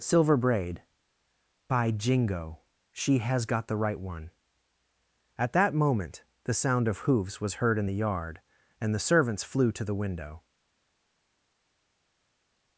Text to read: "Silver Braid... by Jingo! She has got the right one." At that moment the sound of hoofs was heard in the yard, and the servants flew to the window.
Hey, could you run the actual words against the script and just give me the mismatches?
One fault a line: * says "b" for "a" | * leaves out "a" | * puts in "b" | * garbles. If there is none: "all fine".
all fine